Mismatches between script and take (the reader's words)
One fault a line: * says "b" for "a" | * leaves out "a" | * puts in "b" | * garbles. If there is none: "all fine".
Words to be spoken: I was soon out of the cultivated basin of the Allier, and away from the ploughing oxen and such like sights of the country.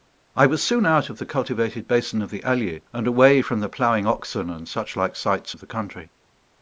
all fine